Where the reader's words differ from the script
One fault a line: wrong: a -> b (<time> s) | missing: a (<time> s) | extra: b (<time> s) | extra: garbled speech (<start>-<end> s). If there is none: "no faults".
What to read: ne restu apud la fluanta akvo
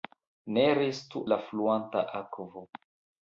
missing: apud (1.2 s)